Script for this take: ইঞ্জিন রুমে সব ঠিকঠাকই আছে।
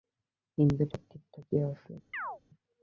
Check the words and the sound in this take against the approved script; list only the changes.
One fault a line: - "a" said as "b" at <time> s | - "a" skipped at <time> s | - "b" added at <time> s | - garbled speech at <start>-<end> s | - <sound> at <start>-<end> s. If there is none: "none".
- "রুমে" skipped at 0.9 s
- chirp at 2.1-2.4 s